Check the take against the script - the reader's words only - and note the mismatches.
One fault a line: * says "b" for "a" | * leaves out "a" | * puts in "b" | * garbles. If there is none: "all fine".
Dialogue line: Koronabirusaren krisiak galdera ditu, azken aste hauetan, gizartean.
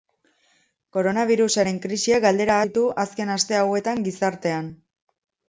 all fine